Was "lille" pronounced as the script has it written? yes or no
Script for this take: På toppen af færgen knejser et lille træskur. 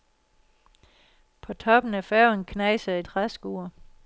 no